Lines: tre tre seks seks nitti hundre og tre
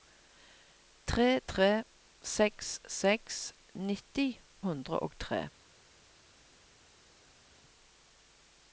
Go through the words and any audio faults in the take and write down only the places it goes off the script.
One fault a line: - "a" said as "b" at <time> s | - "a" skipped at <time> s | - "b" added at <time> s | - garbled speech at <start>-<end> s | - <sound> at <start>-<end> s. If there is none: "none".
none